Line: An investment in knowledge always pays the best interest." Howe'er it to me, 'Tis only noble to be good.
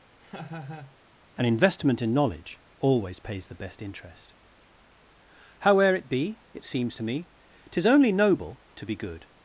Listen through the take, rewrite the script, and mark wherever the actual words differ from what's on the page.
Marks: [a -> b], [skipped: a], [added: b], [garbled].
An investment in knowledge always pays the best interest." Howe'er it [added: be it seems] to me, 'Tis only noble to be good.